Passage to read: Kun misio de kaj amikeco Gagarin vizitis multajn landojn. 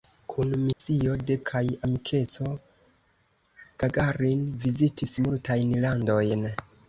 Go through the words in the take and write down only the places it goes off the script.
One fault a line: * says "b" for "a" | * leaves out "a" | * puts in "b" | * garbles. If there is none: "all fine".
all fine